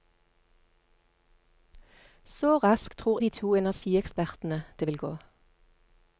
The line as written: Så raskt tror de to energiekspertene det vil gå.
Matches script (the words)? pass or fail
pass